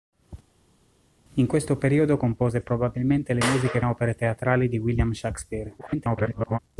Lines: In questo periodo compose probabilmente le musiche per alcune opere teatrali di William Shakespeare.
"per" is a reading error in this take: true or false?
true